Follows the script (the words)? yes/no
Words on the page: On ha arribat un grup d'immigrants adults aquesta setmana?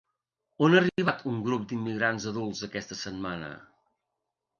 yes